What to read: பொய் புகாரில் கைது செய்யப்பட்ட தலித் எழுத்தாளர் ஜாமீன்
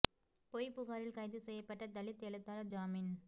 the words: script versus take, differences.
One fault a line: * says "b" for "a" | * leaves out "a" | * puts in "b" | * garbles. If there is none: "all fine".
all fine